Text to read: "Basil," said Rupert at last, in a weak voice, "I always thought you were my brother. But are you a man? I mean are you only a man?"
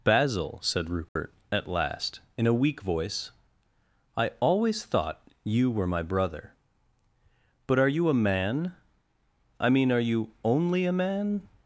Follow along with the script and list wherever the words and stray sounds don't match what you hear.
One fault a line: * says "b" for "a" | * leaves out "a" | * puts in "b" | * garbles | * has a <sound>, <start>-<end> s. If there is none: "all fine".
* has a dropout, 1.1-1.2 s